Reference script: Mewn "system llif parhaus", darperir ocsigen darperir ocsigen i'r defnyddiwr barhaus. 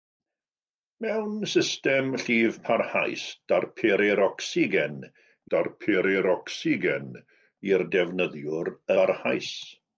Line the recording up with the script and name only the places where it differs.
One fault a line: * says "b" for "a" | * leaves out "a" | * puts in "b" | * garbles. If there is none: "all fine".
all fine